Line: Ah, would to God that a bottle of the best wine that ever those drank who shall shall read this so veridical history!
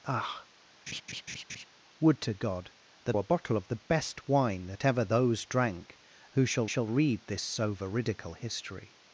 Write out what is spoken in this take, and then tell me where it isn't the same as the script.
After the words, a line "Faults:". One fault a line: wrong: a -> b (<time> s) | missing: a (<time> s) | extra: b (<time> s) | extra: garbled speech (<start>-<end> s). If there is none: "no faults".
Ah, would to God that a bottle of the best wine that ever those drank who shall shall read this so veridical history!
Faults:
no faults